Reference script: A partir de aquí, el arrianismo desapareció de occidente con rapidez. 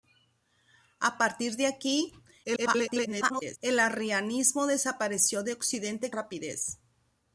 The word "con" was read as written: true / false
false